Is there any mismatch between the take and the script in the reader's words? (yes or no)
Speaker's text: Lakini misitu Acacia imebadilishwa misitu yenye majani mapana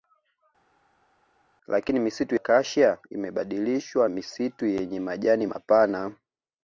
no